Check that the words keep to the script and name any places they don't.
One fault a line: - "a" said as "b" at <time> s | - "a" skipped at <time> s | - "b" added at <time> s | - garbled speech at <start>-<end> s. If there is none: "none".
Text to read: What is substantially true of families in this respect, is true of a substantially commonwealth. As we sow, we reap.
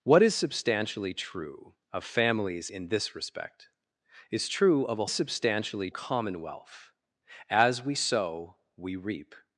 none